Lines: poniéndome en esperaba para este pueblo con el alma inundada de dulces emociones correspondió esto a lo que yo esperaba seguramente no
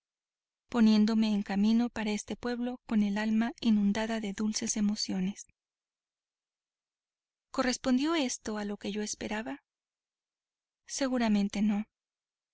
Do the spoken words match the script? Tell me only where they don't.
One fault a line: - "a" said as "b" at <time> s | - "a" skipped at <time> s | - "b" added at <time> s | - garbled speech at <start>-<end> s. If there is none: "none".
- "esperaba" said as "camino" at 1.4 s